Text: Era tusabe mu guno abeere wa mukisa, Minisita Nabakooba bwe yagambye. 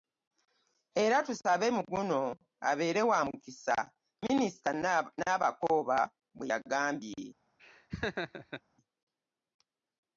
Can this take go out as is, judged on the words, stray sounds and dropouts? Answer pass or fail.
fail